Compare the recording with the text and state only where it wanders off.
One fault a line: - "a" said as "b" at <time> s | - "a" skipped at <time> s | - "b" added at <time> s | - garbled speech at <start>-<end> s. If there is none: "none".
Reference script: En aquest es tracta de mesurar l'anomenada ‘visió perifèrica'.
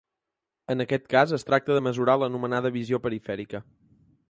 - "cas" added at 1.1 s